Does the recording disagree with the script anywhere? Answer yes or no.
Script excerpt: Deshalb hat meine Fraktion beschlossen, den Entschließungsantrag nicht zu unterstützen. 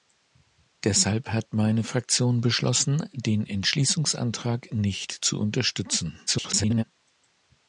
yes